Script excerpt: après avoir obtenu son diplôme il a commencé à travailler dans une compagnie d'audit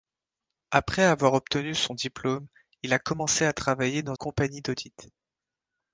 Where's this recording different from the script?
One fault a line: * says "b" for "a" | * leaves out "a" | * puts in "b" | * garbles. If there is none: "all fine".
* leaves out "une"